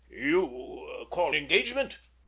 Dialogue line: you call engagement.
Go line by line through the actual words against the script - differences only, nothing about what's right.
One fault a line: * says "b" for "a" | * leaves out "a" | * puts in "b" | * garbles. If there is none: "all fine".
all fine